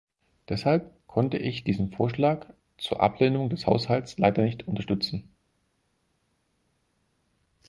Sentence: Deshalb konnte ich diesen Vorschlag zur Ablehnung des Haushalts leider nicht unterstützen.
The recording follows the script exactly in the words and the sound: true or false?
true